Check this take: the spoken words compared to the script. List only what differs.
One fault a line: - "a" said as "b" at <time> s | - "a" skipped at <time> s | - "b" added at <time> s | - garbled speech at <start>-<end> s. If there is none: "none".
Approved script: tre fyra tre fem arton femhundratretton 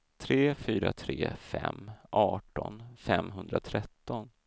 none